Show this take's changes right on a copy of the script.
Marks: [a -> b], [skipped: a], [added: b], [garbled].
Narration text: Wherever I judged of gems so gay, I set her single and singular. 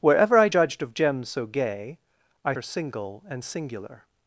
Wherever I judged of gems so gay, I [skipped: set] her single and singular.